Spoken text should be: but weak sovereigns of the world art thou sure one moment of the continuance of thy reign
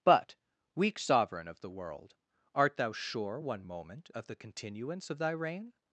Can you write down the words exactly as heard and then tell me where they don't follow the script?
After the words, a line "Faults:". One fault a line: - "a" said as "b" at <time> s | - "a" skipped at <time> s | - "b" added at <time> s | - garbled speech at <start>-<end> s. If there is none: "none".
but weak sovereign of the world art thou sure one moment of the continuance of thy reign
Faults:
- "sovereigns" said as "sovereign" at 1.0 s